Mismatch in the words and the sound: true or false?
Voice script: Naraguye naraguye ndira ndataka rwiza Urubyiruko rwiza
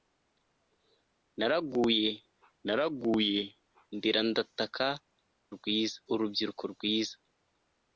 false